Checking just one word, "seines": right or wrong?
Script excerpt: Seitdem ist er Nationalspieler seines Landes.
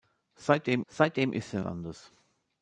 wrong